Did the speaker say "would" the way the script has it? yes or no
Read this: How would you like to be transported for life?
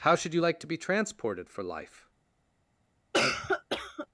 no